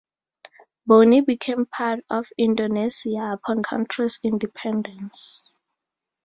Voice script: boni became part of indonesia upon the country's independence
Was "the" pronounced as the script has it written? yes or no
no